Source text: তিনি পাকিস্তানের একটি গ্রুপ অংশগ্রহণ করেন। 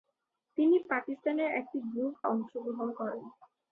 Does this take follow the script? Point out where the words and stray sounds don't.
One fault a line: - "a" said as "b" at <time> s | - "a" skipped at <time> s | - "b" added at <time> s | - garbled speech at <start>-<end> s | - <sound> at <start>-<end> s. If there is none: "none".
none